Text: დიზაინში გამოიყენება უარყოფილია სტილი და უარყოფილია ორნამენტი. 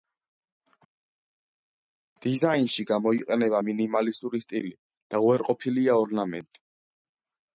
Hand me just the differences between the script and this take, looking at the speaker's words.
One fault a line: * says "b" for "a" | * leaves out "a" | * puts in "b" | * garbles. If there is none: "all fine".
* says "მინიმალისტური" for "უარყოფილია"